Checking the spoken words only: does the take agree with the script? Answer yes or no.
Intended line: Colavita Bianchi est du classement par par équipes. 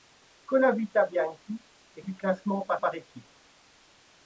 yes